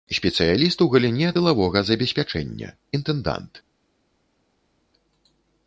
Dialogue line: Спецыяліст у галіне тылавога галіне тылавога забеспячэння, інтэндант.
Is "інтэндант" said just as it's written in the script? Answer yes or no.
yes